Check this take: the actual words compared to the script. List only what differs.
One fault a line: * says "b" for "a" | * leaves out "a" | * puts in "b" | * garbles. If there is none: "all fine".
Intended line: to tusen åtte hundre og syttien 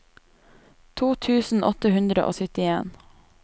all fine